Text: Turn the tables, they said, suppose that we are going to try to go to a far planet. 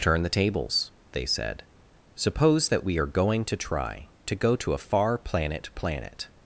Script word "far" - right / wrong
right